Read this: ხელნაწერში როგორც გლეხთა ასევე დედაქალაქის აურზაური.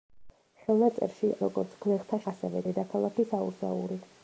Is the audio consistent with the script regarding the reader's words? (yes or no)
yes